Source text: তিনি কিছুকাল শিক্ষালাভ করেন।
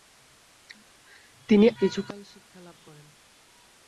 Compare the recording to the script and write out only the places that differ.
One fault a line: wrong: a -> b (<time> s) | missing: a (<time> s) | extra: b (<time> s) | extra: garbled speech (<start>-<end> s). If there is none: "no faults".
no faults